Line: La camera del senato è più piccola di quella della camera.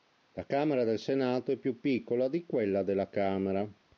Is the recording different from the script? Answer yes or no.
no